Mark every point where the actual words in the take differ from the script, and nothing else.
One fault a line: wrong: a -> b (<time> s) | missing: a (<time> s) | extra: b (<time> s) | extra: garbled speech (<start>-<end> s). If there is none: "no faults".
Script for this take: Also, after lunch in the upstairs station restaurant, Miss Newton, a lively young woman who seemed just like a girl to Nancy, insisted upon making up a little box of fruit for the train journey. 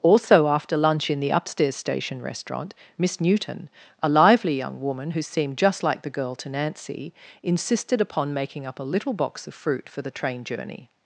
wrong: a -> the (6.0 s)